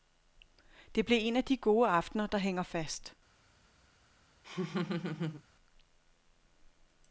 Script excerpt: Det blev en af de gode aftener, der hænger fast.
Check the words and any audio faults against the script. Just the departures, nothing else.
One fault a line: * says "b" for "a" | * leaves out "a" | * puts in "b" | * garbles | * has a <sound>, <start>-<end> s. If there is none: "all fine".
* has a laugh, 4.4-5.4 s